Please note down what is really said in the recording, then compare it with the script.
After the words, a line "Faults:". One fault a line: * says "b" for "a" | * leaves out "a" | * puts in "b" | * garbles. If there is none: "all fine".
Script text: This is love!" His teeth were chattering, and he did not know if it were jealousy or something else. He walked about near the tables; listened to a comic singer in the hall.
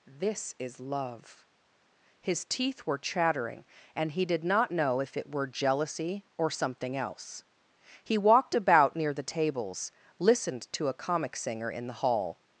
This is love!" His teeth were chattering, and he did not know if it were jealousy or something else. He walked about near the tables; listened to a comic singer in the hall.
Faults:
all fine